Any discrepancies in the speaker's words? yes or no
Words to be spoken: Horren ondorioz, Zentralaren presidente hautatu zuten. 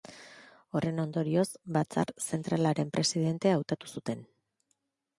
yes